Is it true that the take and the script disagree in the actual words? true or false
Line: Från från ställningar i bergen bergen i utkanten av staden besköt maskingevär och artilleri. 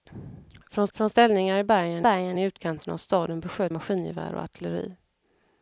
false